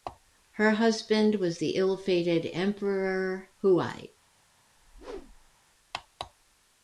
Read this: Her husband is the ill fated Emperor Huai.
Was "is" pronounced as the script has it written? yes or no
no